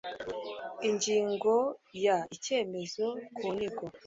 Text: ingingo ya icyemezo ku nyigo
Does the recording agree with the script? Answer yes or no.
yes